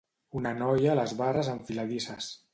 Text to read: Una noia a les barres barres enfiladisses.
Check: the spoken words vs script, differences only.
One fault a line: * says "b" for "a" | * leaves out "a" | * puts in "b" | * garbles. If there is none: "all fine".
* leaves out "barres"